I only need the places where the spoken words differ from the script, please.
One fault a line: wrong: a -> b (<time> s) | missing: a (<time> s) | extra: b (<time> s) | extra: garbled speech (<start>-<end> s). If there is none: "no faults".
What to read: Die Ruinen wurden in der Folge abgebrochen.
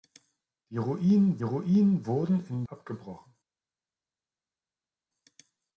extra: Ruinen (1.4 s)
missing: der Folge (2.6 s)